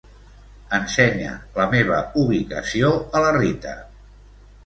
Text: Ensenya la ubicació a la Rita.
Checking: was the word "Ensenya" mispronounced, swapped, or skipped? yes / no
no